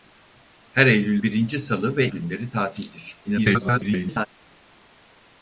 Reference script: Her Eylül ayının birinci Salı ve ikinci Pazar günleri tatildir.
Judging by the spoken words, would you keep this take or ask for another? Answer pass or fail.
fail